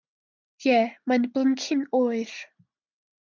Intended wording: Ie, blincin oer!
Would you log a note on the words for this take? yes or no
yes